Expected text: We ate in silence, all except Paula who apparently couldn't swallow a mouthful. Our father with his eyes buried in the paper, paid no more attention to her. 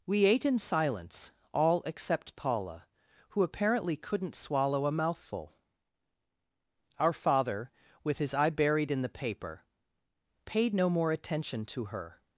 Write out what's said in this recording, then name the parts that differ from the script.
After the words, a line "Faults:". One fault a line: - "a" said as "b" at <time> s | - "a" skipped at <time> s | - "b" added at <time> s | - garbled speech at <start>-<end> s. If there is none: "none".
We ate in silence, all except Paula who apparently couldn't swallow a mouthful. Our father with his eye buried in the paper, paid no more attention to her.
Faults:
- "eyes" said as "eye" at 8.3 s